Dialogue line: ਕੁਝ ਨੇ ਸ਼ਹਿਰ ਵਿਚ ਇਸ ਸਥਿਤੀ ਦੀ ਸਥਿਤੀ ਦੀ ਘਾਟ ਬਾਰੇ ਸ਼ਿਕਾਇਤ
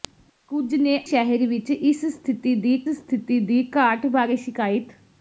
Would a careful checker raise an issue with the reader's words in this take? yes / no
no